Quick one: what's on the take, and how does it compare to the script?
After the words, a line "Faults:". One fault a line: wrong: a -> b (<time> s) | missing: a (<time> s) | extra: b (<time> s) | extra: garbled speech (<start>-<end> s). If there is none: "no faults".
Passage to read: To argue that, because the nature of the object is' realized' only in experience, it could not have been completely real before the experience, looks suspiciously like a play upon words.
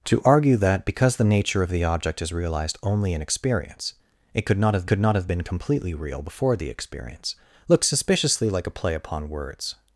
To argue that, because the nature of the object is' realized' only in experience, it could not have could not have been completely real before the experience, looks suspiciously like a play upon words.
Faults:
extra: could not have (4.9 s)